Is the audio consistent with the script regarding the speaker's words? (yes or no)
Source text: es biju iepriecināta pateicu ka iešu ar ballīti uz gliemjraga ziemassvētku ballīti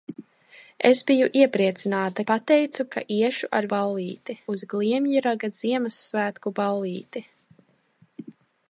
yes